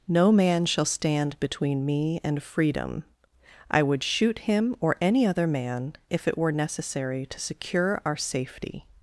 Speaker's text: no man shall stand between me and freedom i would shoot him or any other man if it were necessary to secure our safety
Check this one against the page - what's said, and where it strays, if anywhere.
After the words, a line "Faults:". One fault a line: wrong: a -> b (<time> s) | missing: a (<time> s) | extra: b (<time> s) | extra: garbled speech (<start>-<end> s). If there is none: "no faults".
no man shall stand between me and freedom i would shoot him or any other man if it were necessary to secure our safety
Faults:
no faults